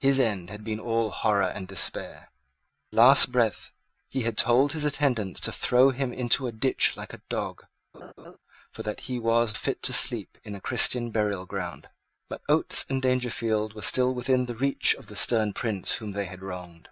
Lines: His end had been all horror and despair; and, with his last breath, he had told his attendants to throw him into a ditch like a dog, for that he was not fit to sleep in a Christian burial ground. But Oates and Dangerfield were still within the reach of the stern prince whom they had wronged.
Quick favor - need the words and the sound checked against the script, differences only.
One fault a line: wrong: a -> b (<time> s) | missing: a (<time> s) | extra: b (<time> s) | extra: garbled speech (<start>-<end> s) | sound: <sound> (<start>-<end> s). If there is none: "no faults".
missing: and with his (2.3 s)
sound: laugh (7.9-8.4 s)
missing: not (9.6 s)